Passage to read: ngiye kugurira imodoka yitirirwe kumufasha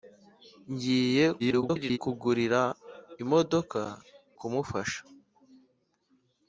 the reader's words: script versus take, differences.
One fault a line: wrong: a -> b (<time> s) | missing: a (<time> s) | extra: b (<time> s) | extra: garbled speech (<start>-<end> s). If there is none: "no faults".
extra: garbled speech (1.4-2.0 s)
missing: yitirirwe (3.8 s)